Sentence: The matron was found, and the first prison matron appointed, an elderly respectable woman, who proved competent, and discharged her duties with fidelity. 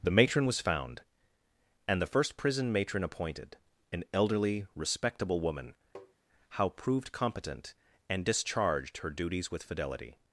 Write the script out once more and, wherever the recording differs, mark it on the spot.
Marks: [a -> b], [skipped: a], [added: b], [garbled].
The matron was found, and the first prison matron appointed, an elderly respectable woman, [who -> how] proved competent, and discharged her duties with fidelity.